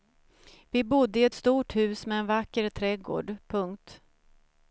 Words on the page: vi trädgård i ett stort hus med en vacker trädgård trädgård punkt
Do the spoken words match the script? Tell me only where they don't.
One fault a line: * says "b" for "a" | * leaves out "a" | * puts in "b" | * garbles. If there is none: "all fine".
* says "bodde" for "trädgård"
* leaves out "trädgård"